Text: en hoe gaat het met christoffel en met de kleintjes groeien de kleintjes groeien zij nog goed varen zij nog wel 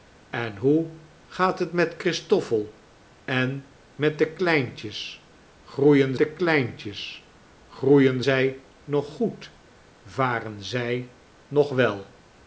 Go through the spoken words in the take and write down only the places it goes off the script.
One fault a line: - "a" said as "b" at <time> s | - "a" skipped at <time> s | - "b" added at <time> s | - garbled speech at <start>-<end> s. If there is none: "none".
none